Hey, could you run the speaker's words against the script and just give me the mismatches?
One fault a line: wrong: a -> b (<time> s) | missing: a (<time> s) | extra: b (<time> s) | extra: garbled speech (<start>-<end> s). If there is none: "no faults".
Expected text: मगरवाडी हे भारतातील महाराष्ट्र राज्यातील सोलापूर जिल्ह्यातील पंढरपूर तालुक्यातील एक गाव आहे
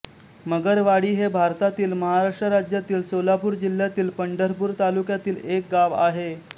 no faults